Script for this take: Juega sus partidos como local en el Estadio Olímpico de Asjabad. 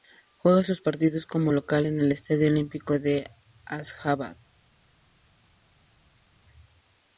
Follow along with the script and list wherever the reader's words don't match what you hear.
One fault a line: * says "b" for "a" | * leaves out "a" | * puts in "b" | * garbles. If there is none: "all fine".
all fine